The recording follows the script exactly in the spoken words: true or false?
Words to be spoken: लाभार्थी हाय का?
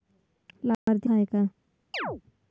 true